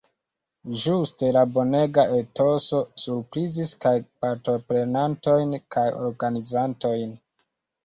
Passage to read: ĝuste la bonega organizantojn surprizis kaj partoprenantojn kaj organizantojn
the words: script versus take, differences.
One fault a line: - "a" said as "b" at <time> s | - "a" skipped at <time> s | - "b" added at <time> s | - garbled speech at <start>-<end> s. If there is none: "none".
- "organizantojn" said as "etoso" at 2.2 s